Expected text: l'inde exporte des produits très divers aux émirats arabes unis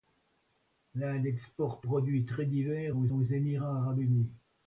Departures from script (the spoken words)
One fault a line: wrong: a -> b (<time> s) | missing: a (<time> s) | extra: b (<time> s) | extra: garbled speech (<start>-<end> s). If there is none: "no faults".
missing: des (1.9 s)
extra: aux (3.1 s)